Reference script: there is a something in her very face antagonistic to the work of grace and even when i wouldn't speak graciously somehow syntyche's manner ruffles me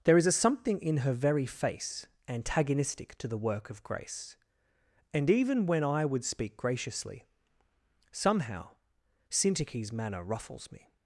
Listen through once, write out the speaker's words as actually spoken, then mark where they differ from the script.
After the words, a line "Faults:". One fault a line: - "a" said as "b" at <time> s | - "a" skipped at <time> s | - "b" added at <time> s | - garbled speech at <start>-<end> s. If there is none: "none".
there is a something in her very face antagonistic to the work of grace and even when i would speak graciously somehow syntyche's manner ruffles me
Faults:
- "wouldn't" said as "would" at 6.0 s